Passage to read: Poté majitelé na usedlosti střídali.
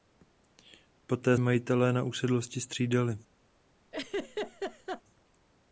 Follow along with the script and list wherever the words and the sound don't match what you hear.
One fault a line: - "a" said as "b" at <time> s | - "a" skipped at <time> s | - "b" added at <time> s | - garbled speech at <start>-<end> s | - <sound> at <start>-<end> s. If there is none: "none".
- laugh at 3.9-5.0 s